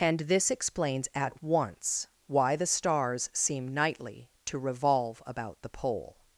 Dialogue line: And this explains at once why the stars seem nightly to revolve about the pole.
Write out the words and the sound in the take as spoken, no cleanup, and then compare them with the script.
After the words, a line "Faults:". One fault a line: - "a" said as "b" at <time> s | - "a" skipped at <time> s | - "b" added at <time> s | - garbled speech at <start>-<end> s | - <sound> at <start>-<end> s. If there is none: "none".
And this explains at once why the stars seem nightly to revolve about the pole.
Faults:
none